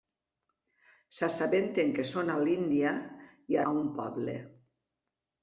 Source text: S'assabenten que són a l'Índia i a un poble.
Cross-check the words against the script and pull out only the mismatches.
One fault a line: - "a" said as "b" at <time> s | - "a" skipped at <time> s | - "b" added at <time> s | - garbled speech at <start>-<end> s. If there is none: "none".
none